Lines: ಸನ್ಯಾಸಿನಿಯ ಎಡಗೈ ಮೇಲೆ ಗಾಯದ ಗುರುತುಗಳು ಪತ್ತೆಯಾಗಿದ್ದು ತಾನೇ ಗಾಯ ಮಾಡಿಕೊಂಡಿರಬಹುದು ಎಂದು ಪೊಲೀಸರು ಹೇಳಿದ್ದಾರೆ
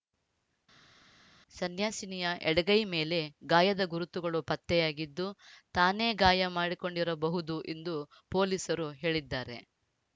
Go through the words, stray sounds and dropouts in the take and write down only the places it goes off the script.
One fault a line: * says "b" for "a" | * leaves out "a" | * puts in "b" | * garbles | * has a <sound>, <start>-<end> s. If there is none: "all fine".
all fine